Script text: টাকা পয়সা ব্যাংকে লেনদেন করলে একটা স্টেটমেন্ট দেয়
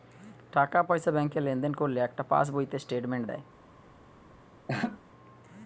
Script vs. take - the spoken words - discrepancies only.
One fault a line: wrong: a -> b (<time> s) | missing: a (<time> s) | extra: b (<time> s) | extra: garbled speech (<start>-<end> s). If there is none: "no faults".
extra: পাশ বইতে (2.2 s)